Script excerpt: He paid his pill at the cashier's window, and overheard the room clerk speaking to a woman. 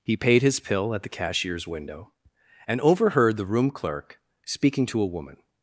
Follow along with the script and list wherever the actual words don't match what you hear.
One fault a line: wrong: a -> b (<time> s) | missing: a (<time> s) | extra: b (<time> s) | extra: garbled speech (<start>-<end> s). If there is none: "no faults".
no faults